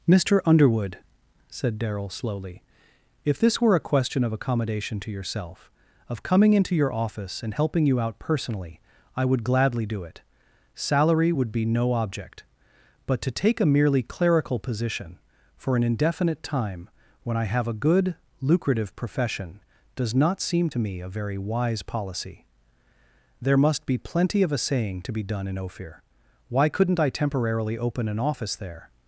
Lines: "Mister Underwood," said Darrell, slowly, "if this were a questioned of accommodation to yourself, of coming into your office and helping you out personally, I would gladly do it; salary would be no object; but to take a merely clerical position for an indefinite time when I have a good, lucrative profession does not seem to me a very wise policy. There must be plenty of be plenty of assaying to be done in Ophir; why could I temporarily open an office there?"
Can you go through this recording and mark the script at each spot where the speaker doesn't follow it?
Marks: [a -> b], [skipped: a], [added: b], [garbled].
"Mister Underwood," said Darrell, slowly, "if this were a [questioned -> question] of accommodation to yourself, of coming into your office and helping you out personally, I would gladly do it; salary would be no object; but to take a merely clerical position for an indefinite time when I have a good, lucrative profession does not seem to me a very wise policy. There must be plenty of [skipped: be plenty of] assaying to be done in Ophir; why [could -> couldn't] I temporarily open an office there?"